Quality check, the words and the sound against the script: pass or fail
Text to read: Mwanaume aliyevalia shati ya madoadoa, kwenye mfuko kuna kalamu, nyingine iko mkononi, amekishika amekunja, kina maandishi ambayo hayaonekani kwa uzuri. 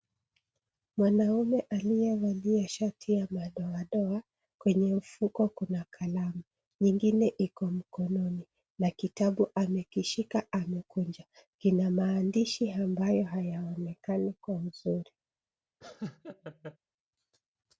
fail